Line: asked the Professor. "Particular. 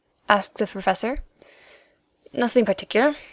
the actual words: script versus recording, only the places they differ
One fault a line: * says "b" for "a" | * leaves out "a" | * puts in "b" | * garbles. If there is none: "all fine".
* puts in "Nothing"